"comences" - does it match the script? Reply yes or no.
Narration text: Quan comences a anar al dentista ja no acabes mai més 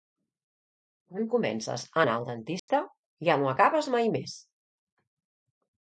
yes